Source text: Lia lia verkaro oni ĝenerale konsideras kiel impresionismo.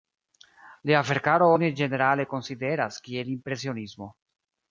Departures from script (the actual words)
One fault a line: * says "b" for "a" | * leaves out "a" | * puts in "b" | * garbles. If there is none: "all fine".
* leaves out "lia"